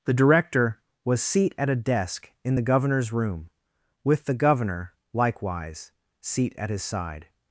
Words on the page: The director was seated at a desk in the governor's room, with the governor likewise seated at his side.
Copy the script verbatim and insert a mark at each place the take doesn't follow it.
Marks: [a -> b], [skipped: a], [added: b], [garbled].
The director was [seated -> seat] at a desk in the governor's room, with the governor likewise [seated -> seat] at his side.